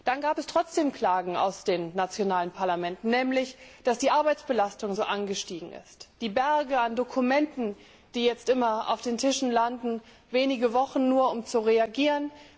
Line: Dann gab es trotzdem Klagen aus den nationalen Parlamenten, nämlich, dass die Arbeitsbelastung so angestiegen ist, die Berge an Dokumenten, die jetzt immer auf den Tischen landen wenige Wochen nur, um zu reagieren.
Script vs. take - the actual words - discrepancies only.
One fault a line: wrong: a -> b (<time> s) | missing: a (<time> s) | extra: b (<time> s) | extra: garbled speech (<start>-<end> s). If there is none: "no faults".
no faults